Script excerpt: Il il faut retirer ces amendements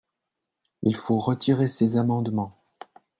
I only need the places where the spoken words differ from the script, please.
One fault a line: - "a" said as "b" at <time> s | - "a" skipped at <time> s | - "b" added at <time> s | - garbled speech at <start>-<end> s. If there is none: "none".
- "il" skipped at 0.9 s